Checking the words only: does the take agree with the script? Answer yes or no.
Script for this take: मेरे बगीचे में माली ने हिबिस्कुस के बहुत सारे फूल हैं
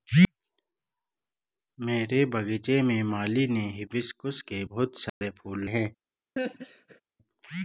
yes